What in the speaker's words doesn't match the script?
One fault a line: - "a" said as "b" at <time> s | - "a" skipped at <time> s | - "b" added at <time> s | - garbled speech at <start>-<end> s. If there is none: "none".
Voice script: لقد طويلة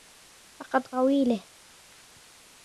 none